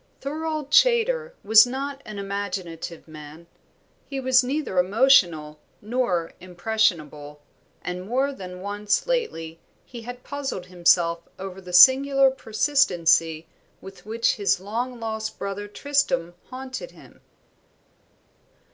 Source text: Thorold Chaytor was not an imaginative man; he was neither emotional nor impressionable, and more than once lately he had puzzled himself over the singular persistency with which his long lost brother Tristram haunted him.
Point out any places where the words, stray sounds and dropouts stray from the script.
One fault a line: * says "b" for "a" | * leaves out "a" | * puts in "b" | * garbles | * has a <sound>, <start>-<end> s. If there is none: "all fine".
all fine